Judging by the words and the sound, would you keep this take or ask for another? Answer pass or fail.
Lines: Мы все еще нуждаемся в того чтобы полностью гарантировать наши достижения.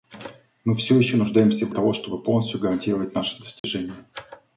fail